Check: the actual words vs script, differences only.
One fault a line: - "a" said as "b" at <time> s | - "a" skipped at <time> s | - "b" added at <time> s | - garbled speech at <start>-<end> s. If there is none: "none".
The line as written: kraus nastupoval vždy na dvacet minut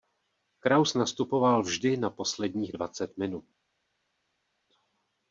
- "posledních" added at 2.1 s